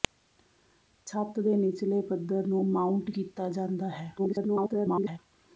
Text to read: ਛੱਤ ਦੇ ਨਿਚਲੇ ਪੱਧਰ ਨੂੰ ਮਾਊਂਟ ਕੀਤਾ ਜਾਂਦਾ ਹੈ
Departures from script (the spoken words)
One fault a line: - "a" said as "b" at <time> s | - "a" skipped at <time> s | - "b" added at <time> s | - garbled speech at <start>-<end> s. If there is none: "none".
- garbled speech at 4.2-5.2 s